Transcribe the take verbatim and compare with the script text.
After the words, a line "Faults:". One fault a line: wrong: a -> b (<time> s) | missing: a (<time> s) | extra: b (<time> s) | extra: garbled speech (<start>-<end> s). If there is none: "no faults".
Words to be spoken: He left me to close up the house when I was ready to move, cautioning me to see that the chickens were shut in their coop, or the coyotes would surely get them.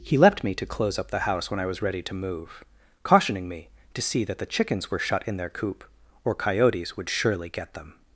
He left me to close up the house when I was ready to move, cautioning me to see that the chickens were shut in their coop, or coyotes would surely get them.
Faults:
missing: the (6.3 s)